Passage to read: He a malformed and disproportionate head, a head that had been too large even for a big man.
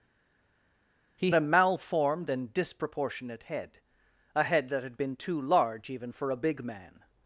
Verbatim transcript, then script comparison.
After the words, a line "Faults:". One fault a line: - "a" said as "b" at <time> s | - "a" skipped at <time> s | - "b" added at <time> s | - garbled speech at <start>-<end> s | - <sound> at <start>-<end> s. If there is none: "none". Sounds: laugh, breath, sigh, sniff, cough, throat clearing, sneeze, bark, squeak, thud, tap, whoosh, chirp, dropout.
He a malformed and disproportionate head, a head that had been too large even for a big man.
Faults:
none